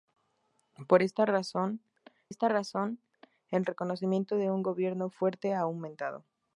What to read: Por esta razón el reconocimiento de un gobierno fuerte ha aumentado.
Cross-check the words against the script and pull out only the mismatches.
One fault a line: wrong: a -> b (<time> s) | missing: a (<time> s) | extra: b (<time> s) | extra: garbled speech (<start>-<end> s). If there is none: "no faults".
extra: esta razón (2.3 s)